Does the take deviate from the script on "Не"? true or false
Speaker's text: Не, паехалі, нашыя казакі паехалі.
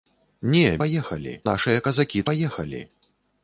false